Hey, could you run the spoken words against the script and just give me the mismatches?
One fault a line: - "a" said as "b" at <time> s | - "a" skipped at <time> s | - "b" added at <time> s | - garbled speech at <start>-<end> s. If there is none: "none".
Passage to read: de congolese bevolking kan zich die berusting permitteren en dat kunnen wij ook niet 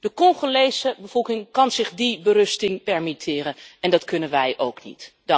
none